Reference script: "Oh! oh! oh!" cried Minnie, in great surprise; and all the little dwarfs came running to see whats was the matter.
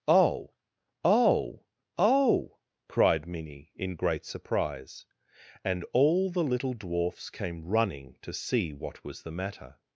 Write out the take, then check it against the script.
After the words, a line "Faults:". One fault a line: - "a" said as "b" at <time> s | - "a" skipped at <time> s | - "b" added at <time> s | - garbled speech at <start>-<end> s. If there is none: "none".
"Oh! oh! oh!" cried Minnie, in great surprise; and all the little dwarfs came running to see what was the matter.
Faults:
- "whats" said as "what" at 8.7 s